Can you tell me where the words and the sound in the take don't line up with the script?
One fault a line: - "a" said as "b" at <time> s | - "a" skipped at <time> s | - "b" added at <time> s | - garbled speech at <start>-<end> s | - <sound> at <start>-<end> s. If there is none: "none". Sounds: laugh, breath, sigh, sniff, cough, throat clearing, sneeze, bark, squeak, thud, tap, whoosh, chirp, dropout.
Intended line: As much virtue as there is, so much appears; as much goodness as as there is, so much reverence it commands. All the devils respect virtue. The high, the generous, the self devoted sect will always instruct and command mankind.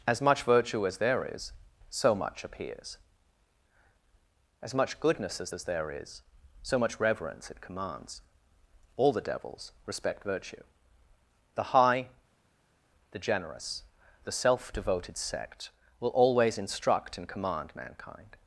none